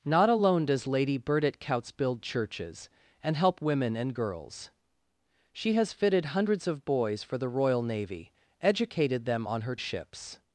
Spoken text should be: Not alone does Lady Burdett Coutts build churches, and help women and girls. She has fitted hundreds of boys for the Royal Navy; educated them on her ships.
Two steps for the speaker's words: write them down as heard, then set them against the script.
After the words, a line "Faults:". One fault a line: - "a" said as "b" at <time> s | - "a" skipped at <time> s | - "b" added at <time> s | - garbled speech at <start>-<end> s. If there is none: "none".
Not alone does Lady Burdett Coutts build churches, and help women and girls. She has fitted hundreds of boys for the Royal Navy; educated them on her ships.
Faults:
none